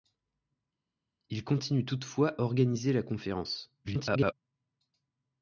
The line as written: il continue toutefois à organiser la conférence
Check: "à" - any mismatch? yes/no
yes